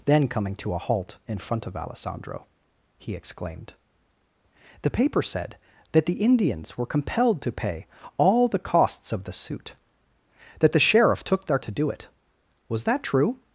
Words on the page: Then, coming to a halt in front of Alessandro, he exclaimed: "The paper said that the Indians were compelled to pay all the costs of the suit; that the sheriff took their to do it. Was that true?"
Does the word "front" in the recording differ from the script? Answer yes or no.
no